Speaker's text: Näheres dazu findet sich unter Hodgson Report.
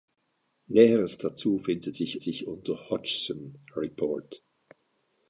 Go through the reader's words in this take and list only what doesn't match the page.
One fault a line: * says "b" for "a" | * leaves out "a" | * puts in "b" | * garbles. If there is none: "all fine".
* puts in "sich"